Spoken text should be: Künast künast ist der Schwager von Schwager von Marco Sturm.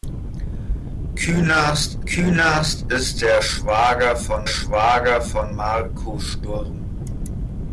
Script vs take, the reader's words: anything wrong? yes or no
no